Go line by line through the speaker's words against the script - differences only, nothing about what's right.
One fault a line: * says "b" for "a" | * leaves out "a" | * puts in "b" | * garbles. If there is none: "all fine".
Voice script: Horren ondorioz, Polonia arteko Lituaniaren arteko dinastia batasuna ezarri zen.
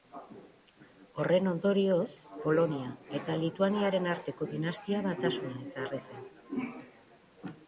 * says "eta" for "arteko"